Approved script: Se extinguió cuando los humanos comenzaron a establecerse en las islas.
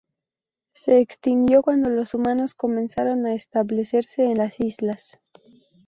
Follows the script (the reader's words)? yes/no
yes